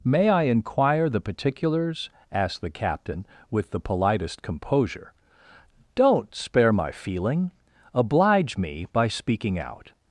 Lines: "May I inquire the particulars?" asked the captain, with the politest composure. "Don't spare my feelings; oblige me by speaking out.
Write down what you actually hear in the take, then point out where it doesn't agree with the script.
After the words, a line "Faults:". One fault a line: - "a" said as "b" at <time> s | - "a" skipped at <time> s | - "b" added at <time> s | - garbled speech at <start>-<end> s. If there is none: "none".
"May I inquire the particulars?" asked the captain, with the politest composure. "Don't spare my feeling; oblige me by speaking out.
Faults:
- "feelings" said as "feeling" at 6.9 s